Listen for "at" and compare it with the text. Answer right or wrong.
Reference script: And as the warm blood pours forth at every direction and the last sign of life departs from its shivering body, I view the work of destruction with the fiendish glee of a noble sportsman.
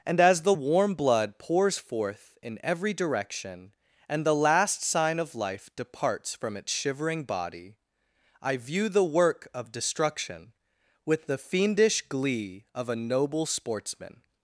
wrong